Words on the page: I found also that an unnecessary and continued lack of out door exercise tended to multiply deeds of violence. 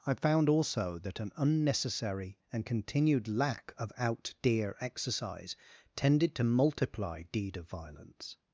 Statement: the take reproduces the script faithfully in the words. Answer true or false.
false